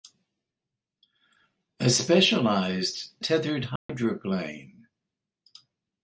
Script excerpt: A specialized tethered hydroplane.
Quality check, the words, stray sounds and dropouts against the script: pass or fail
fail